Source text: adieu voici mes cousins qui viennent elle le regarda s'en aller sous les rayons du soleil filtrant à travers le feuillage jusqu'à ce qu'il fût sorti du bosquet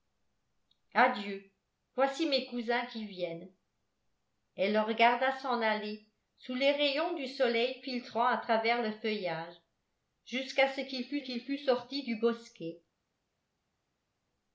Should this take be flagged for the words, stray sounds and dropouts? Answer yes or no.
yes